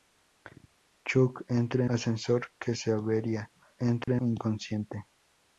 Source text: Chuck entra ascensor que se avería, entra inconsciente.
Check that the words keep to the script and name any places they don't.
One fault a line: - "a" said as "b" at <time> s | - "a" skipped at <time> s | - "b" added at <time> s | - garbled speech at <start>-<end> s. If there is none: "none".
none